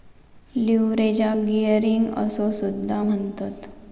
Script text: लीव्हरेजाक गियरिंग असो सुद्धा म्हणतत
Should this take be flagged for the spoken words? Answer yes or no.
no